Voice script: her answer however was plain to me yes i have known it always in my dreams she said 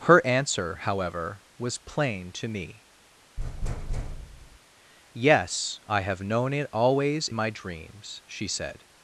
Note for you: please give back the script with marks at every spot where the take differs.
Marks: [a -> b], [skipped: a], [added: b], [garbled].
her answer however was plain to me yes i have known it always [skipped: in] my dreams she said